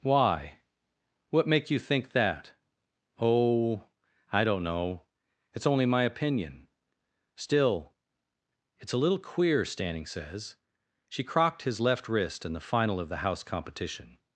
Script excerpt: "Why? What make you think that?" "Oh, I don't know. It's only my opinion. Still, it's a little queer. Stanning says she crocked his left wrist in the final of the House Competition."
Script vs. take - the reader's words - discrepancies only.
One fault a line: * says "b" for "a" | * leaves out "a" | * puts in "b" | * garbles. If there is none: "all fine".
all fine